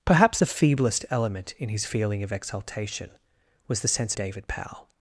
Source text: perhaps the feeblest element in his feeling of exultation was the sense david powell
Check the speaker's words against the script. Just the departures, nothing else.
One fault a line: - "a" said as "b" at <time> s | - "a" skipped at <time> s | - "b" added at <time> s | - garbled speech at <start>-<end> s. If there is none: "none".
none